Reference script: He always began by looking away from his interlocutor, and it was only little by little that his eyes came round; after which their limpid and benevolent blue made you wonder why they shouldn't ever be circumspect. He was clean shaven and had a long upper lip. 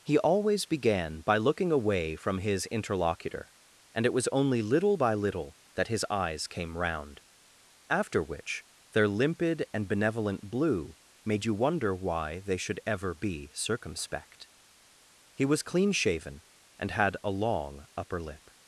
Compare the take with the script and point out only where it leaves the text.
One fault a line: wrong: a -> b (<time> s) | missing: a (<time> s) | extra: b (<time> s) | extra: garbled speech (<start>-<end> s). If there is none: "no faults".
wrong: shouldn't -> should (12.6 s)